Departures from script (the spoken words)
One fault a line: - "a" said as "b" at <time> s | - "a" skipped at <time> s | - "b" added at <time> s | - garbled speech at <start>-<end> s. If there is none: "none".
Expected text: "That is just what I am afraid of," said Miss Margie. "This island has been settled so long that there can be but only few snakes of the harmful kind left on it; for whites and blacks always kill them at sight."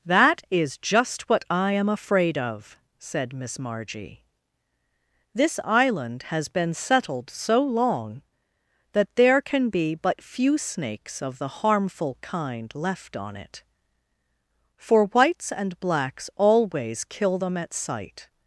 - "only" skipped at 10.2 s